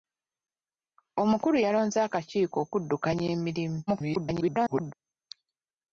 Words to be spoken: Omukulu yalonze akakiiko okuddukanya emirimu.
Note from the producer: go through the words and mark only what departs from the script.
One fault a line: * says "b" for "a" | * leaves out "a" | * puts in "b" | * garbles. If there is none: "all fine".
* garbles